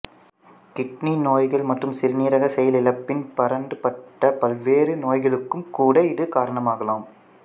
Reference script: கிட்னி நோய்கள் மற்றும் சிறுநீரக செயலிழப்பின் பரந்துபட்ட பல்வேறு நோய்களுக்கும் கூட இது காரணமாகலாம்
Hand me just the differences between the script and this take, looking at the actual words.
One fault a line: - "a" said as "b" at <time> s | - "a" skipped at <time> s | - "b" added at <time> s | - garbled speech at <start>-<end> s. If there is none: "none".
none